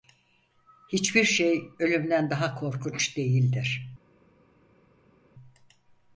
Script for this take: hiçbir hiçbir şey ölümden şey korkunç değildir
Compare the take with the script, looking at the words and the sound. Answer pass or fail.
fail